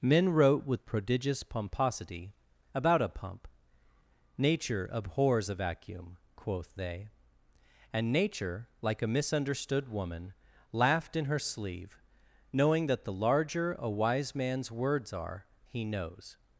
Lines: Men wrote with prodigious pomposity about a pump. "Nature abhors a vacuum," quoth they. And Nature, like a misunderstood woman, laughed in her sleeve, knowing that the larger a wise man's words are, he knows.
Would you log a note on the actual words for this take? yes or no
no